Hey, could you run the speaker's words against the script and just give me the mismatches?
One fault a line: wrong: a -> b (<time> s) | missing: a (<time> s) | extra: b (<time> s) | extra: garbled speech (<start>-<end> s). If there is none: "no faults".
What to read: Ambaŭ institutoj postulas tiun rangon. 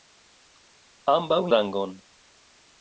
missing: institutoj postulas tiun (1.4 s)